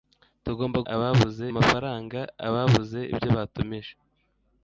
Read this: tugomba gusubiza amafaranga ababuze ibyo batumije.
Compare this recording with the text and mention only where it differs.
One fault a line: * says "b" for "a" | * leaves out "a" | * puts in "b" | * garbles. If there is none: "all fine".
* says "ababuze" for "gusubiza"